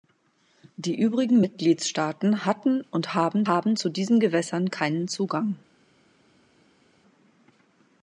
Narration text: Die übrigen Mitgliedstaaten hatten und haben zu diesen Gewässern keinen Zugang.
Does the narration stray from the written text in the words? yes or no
yes